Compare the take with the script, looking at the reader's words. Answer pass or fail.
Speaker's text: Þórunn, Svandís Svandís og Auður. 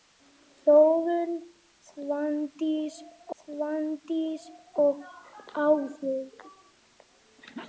pass